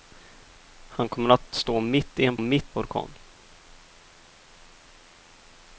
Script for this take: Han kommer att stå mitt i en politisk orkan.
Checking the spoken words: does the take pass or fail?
fail